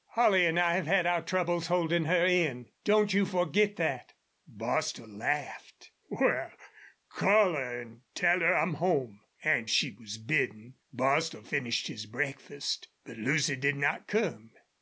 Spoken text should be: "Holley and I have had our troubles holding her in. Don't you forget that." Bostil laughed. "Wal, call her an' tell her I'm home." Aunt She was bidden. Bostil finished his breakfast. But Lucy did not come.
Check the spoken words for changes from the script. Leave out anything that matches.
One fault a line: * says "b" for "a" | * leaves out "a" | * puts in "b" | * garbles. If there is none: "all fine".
all fine